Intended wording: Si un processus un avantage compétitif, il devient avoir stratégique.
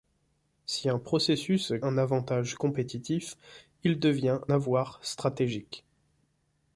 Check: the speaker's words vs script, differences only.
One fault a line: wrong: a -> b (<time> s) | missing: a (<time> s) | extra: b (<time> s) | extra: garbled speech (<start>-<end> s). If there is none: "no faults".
no faults